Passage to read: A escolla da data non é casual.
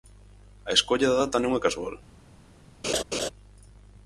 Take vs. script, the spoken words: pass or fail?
pass